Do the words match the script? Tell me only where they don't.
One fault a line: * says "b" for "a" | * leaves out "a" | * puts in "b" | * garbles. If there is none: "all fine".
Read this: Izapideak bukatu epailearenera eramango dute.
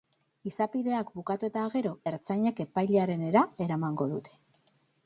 * puts in "eta gero ertzainek"